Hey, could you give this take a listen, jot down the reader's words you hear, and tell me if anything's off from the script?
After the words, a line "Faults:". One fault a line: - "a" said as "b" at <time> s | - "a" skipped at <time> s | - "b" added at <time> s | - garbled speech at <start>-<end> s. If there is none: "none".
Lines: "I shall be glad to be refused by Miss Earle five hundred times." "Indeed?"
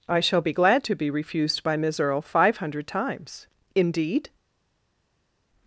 "I shall be glad to be refused by Miss Earle five hundred times." "Indeed?"
Faults:
none